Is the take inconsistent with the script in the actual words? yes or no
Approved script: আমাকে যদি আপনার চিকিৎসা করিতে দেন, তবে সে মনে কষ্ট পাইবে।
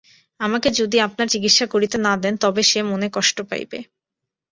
yes